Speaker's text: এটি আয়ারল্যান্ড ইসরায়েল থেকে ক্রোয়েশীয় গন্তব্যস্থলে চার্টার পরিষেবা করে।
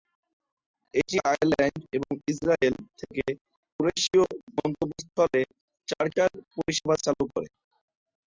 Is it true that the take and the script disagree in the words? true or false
true